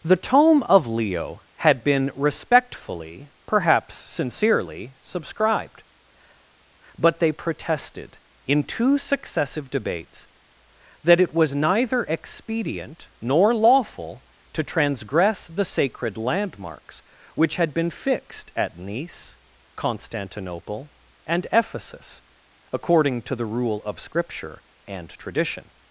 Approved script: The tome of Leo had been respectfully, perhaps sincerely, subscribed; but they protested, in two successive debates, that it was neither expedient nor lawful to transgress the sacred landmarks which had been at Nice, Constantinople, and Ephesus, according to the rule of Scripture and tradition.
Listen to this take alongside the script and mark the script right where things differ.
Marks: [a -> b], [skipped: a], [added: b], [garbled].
The tome of Leo had been respectfully, perhaps sincerely, subscribed; but they protested, in two successive debates, that it was neither expedient nor lawful to transgress the sacred landmarks which had been [added: fixed] at Nice, Constantinople, and Ephesus, according to the rule of Scripture and tradition.